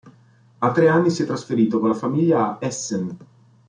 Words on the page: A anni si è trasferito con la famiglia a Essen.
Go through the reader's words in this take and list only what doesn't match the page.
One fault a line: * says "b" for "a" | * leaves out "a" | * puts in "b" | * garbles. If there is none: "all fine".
* puts in "tre"